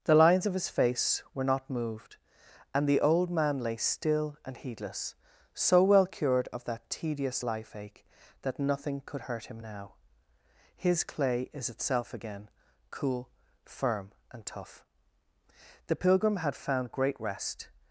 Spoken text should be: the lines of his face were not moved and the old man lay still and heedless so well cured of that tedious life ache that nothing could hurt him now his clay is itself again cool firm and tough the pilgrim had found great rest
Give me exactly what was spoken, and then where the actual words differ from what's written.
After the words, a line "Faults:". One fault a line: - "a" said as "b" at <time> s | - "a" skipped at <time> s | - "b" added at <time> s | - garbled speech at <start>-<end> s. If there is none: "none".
the lines of his face were not moved and the old man lay still and heedless so well cured of that tedious life ache that nothing could hurt him now his clay is itself again cool firm and tough the pilgrim had found great rest
Faults:
none